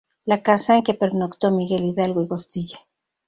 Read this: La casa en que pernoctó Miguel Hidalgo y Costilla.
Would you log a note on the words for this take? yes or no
no